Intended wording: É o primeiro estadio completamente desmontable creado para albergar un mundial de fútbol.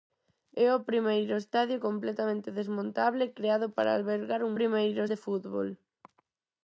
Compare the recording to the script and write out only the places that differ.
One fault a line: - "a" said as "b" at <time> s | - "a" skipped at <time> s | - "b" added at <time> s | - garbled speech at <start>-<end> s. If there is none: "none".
- "mundial" said as "primeiro" at 4.6 s